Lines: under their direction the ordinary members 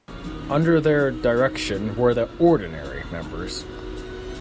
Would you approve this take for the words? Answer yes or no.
no